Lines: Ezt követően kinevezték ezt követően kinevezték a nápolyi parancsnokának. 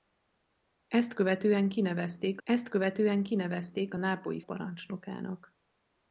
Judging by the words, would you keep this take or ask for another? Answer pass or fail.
pass